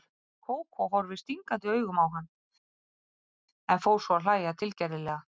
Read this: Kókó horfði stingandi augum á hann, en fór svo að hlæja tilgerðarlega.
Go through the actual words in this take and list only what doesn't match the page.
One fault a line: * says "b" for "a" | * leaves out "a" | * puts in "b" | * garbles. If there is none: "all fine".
all fine